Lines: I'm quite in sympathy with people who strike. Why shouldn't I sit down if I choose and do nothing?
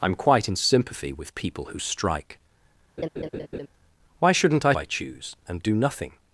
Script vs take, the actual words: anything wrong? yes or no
yes